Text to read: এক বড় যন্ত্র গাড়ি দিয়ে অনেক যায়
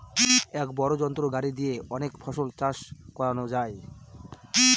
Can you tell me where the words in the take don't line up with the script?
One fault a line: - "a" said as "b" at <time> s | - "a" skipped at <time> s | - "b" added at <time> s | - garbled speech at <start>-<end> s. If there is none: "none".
- "ফসল চাষ করানো" added at 2.2 s